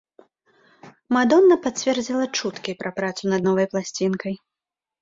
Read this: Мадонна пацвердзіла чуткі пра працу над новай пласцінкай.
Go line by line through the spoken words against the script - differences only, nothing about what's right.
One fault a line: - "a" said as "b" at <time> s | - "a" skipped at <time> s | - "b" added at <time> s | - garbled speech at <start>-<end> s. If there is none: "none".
none